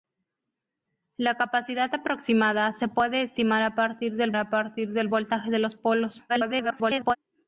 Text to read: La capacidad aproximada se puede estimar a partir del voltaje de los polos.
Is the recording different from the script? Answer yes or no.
yes